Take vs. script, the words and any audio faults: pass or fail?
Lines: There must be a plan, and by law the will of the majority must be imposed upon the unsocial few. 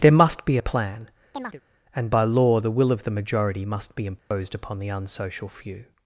fail